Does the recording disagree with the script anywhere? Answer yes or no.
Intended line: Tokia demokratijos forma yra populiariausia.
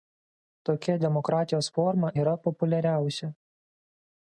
no